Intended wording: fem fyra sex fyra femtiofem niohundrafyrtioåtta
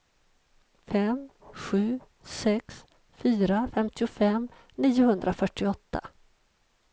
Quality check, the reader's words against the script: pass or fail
fail